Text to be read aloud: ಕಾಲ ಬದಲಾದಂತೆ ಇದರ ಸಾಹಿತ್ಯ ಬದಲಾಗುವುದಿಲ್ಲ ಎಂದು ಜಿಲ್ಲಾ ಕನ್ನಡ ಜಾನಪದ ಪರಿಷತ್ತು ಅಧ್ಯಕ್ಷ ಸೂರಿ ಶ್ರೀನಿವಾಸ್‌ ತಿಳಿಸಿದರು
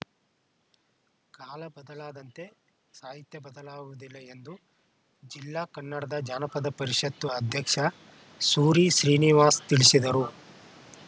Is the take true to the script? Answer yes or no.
no